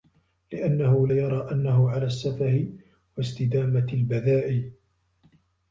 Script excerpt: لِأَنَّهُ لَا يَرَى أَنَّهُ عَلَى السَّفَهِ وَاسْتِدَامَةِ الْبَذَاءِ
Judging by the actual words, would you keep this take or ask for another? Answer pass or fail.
fail